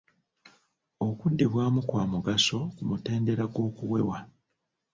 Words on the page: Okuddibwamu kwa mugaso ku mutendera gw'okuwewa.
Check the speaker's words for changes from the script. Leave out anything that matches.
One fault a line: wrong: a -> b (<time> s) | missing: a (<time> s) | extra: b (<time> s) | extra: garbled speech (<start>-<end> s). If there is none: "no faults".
no faults